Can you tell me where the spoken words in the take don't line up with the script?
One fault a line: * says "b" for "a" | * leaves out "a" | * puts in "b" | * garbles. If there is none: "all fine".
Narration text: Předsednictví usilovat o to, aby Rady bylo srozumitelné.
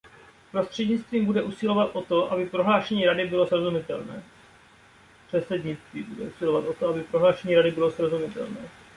* puts in "bude"
* puts in "prohlášení"